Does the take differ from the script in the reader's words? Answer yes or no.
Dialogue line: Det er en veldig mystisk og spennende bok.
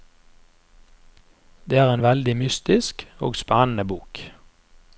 no